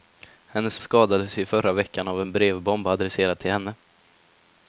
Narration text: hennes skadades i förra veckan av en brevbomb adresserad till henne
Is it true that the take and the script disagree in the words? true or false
false